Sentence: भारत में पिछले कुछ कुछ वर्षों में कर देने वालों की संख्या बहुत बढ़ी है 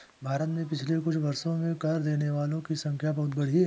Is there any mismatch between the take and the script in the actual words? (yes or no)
yes